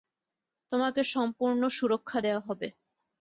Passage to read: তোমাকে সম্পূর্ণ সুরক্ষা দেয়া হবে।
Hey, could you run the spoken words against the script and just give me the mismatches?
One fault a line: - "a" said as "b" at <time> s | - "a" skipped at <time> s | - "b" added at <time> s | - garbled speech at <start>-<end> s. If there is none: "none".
none